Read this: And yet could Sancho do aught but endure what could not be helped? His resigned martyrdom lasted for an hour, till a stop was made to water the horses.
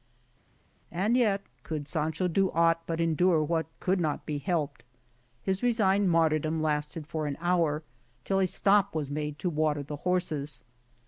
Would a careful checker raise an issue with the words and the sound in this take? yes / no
no